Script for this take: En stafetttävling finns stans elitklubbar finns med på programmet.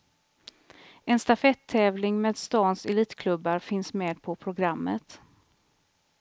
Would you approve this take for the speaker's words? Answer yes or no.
no